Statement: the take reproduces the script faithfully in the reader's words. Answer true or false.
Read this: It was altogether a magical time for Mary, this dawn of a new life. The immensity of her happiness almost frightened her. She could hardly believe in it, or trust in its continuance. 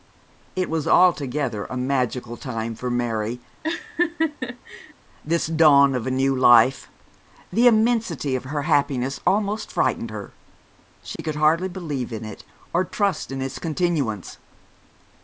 true